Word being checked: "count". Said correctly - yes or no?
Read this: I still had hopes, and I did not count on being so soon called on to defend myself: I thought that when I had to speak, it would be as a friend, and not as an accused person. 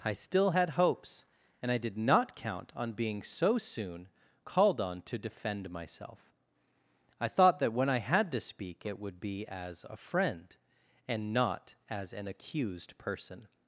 yes